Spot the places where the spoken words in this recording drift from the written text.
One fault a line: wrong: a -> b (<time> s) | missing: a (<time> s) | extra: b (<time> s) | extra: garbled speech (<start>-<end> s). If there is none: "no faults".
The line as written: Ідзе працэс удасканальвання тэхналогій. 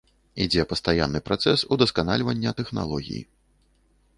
extra: пастаянны (0.7 s)